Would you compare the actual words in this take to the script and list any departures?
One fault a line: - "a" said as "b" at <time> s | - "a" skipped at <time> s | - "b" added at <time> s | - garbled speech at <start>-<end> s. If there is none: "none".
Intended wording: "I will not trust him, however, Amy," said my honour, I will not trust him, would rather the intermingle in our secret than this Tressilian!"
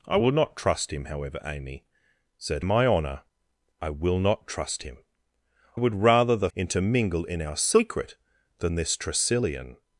none